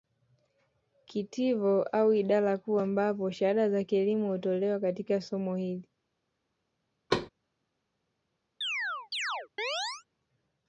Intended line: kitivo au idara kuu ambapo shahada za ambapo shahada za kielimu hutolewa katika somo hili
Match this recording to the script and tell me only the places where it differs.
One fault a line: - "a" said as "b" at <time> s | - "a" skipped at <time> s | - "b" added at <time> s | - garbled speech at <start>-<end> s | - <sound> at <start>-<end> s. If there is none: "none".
- "ambapo shahada za" skipped at 3.8 s
- thud at 7.1-7.3 s
- chirp at 8.6-10.0 s